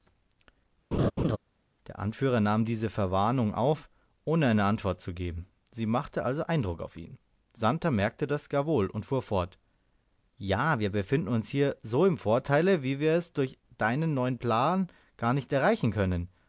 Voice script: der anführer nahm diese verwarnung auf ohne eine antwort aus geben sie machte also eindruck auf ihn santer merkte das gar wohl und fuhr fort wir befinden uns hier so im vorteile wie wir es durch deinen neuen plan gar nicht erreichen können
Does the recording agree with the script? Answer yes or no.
no